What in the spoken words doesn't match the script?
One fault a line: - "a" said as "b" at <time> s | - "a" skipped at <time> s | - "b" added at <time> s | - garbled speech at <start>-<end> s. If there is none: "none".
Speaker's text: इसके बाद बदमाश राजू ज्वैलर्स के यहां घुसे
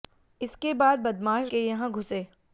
- "राजू ज्वैलर्स" skipped at 1.5 s